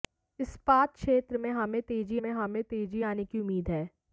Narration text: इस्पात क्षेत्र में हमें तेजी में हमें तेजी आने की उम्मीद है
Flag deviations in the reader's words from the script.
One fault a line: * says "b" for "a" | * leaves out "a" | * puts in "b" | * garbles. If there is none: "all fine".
all fine